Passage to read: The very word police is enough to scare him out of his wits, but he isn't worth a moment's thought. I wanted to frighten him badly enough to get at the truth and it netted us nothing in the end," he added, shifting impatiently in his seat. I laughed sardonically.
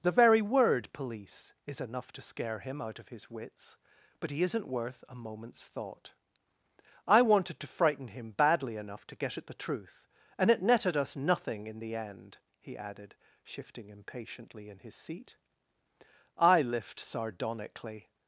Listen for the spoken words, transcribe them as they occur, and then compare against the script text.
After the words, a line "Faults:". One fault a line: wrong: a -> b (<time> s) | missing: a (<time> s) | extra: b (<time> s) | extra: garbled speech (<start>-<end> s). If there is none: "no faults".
The very word police is enough to scare him out of his wits, but he isn't worth a moment's thought. I wanted to frighten him badly enough to get at the truth and it netted us nothing in the end," he added, shifting impatiently in his seat. I lift sardonically.
Faults:
wrong: laughed -> lift (16.6 s)